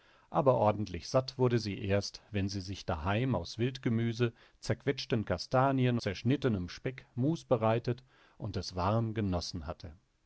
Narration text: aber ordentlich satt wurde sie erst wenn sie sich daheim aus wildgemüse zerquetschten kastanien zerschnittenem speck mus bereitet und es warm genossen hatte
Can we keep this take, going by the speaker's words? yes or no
yes